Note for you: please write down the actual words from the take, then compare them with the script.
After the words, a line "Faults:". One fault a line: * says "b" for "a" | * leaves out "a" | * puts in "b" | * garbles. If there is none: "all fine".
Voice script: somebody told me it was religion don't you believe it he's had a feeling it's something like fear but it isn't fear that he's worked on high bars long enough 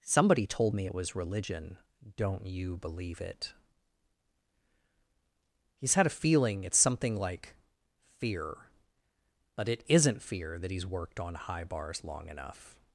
somebody told me it was religion don't you believe it he's had a feeling it's something like fear but it isn't fear that he's worked on high bars long enough
Faults:
all fine